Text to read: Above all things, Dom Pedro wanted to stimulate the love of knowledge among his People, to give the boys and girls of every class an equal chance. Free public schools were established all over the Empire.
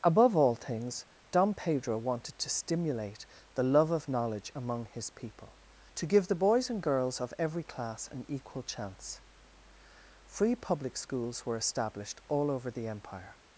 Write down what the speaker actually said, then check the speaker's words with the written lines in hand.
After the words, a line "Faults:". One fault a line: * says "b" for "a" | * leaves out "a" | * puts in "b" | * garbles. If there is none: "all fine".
Above all things, Dom Pedro wanted to stimulate the love of knowledge among his People, to give the boys and girls of every class an equal chance. Free public schools were established all over the Empire.
Faults:
all fine